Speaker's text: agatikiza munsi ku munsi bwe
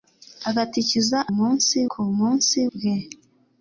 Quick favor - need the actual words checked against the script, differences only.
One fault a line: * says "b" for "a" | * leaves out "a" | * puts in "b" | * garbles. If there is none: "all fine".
all fine